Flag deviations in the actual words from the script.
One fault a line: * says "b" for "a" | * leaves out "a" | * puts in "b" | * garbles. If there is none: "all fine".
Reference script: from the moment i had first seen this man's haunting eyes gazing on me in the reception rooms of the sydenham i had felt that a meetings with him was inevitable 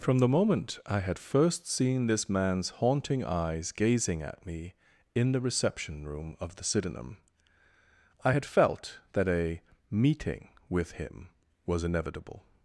* says "at" for "on"
* says "room" for "rooms"
* says "meeting" for "meetings"